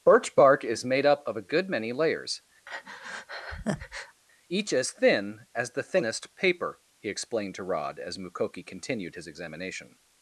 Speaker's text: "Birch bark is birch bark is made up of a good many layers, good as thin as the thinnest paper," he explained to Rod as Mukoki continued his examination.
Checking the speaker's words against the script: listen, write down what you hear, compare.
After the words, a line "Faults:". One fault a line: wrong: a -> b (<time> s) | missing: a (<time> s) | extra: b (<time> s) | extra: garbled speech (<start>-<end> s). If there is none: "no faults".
"Birch bark is made up of a good many layers, each as thin as the thinnest paper," he explained to Rod as Mukoki continued his examination.
Faults:
missing: birch bark is (0.8 s)
wrong: good -> each (4.5 s)